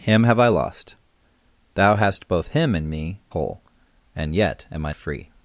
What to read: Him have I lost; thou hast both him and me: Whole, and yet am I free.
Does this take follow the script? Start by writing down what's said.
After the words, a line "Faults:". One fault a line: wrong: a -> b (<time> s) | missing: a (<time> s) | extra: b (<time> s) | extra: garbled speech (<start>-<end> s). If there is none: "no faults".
Him have I lost; thou hast both him and me: Whole, and yet am I free.
Faults:
no faults